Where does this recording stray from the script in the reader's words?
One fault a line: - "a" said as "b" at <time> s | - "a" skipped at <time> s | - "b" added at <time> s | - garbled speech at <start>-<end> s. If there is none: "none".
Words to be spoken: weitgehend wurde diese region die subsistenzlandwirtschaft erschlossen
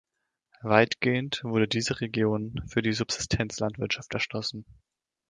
- "für" added at 2.7 s